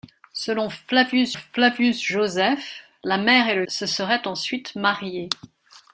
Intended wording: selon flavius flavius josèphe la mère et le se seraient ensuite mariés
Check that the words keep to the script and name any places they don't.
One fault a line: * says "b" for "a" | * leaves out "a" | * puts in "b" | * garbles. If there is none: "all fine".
all fine